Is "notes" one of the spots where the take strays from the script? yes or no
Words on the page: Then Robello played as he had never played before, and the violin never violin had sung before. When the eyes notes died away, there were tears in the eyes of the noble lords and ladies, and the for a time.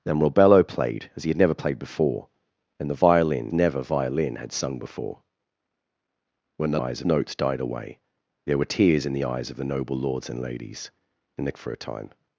no